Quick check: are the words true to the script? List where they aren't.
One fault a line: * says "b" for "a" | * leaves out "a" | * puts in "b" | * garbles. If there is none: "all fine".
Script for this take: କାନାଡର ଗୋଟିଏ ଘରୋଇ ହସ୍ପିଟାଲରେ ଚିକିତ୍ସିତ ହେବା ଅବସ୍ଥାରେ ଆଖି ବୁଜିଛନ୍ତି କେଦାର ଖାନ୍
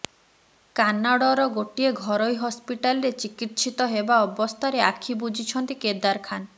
all fine